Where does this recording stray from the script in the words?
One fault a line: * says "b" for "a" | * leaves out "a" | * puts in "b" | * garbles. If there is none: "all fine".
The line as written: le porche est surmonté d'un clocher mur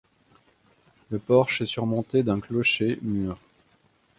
all fine